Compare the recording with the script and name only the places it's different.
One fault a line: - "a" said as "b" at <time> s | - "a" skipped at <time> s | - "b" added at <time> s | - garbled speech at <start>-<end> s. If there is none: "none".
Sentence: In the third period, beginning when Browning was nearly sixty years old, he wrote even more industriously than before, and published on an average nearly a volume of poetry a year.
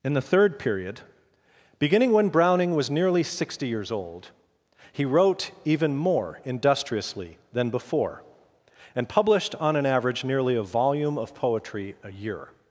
none